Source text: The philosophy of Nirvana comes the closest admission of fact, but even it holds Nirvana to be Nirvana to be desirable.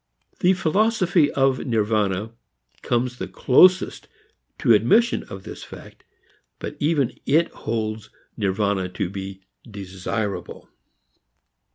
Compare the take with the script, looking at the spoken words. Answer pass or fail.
fail